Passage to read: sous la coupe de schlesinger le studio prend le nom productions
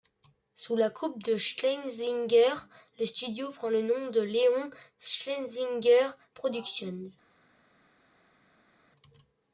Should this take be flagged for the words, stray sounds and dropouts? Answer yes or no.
yes